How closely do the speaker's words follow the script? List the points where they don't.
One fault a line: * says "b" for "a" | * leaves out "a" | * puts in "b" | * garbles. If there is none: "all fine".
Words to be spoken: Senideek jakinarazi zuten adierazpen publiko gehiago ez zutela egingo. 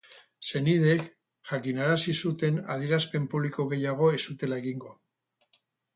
all fine